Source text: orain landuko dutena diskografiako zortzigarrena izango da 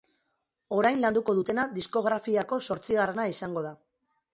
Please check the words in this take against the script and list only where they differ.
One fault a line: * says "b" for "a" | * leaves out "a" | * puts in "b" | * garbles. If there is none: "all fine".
all fine